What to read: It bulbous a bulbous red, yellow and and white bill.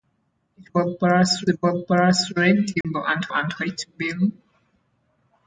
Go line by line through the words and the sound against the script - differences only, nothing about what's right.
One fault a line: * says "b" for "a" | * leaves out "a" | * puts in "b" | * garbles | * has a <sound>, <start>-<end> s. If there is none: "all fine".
* has a dropout, 2.8-2.8 s